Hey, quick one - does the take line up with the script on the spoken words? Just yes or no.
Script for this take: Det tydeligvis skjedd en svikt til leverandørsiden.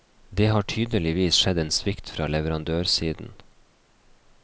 no